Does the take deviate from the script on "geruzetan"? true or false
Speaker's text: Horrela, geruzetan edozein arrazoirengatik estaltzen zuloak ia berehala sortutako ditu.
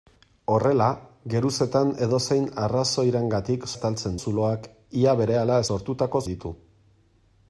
false